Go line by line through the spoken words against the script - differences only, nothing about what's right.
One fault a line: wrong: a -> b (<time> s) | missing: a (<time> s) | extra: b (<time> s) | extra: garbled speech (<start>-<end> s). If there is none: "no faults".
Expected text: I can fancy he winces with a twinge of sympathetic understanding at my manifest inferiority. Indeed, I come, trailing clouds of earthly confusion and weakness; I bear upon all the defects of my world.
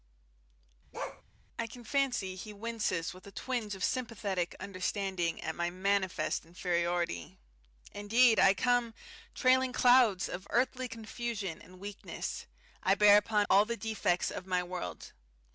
no faults